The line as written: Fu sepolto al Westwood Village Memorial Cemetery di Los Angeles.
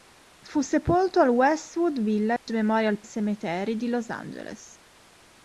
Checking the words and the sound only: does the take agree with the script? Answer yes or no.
no